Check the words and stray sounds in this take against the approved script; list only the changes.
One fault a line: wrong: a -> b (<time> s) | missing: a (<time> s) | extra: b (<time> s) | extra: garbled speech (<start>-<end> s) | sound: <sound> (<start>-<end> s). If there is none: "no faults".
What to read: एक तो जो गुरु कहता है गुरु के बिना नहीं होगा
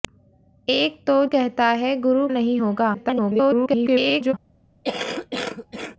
missing: जो गुरु (1.2 s)
missing: के बिना (2.3 s)
extra: garbled speech (2.9-4.3 s)
sound: cough (4.8-6.0 s)